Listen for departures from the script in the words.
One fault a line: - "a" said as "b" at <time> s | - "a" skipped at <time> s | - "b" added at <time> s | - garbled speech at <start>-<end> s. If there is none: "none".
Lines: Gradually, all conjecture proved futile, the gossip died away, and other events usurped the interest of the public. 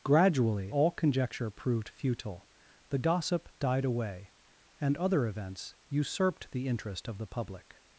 none